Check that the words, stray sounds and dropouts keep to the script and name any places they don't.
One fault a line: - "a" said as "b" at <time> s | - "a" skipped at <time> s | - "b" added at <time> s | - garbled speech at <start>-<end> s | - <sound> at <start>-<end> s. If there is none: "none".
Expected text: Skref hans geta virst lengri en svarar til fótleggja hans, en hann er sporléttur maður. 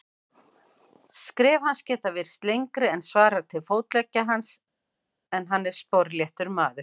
none